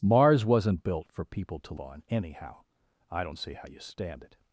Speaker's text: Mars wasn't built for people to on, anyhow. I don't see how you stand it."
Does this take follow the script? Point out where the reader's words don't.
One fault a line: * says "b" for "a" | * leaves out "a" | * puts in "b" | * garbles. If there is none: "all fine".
all fine